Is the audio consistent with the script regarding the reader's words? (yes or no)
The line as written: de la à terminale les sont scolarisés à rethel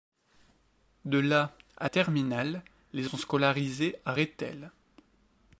yes